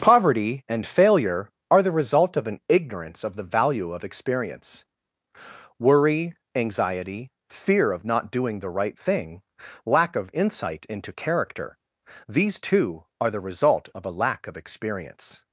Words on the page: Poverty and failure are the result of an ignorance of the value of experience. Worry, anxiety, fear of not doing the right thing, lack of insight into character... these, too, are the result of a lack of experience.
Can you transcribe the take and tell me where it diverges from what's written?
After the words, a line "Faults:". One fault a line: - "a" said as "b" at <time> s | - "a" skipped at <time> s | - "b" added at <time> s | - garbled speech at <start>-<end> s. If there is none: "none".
Poverty and failure are the result of an ignorance of the value of experience. Worry, anxiety, fear of not doing the right thing, lack of insight into character... these, too, are the result of a lack of experience.
Faults:
none